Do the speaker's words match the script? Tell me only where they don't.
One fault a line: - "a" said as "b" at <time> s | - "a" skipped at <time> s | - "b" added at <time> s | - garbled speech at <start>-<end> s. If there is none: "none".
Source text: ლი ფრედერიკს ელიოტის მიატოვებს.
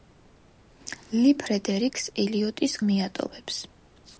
none